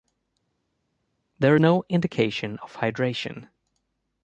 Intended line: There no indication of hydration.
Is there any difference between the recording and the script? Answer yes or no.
no